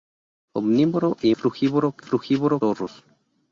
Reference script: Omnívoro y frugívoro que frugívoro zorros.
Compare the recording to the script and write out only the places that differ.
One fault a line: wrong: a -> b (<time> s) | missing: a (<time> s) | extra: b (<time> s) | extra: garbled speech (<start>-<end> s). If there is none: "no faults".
no faults